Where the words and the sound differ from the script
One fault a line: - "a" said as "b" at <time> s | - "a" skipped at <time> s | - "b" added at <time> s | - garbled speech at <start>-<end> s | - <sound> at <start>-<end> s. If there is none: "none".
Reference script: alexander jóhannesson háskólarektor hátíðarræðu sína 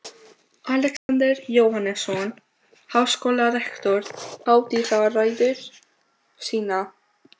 - dropout at 1.0-1.1 s